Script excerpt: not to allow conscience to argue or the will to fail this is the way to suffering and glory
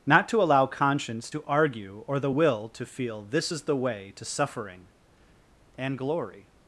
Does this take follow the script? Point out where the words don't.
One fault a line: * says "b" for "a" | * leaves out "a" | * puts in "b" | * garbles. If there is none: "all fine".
* says "feel" for "fail"